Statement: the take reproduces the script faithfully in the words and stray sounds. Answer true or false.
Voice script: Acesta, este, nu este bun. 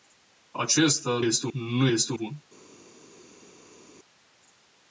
true